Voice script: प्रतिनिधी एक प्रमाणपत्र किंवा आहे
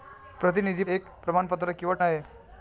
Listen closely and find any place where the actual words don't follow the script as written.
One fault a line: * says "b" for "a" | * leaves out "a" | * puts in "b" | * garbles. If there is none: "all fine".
all fine